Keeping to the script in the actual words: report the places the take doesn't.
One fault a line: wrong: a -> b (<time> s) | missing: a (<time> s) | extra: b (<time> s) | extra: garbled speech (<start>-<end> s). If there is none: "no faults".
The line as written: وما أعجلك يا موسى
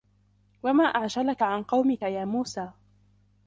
extra: عن قومك (1.4 s)